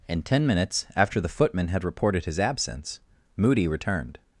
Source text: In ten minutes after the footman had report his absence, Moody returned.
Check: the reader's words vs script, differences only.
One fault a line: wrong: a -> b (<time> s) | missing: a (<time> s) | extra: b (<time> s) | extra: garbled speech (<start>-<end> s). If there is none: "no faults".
wrong: report -> reported (1.8 s)